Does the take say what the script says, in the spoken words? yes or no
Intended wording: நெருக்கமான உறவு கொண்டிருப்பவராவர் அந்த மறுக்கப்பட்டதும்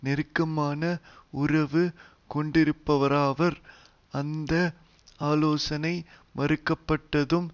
no